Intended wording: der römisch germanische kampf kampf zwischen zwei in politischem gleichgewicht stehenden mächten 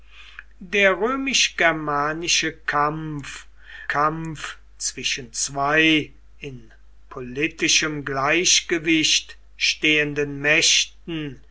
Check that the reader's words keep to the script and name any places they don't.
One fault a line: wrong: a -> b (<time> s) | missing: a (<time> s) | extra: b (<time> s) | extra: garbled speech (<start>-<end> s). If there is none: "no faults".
no faults